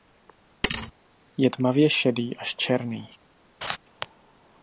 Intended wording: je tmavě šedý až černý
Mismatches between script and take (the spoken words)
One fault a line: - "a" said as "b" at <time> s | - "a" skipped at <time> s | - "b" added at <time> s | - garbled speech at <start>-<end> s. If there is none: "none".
none